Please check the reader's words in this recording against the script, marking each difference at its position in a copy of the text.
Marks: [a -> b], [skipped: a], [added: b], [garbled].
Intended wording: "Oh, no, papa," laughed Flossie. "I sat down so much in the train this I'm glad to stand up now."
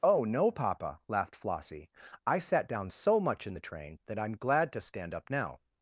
"Oh, no, papa," laughed Flossie. "I sat down so much in the train [this -> that] I'm glad to stand up now."